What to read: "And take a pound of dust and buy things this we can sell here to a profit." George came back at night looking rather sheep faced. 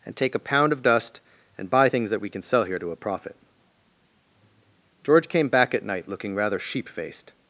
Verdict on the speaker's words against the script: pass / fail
fail